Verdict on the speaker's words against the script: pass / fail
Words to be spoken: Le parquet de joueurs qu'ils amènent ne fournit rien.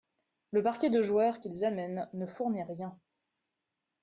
pass